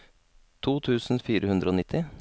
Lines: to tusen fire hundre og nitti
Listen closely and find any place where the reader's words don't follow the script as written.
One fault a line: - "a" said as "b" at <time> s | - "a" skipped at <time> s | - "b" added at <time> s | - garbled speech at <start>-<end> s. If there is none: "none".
none